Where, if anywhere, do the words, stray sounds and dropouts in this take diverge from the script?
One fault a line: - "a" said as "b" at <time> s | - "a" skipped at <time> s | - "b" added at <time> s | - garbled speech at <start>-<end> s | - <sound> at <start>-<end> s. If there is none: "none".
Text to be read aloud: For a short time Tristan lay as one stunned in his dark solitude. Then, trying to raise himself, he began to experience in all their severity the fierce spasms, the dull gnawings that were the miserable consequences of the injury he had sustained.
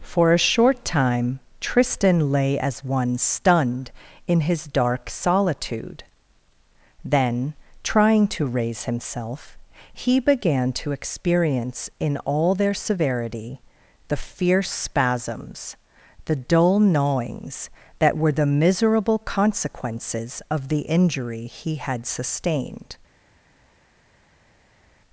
none